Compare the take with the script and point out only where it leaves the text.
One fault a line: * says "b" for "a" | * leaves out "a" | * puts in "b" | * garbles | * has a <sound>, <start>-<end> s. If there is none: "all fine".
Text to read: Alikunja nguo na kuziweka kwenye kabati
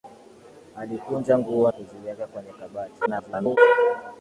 * leaves out "na"
* garbles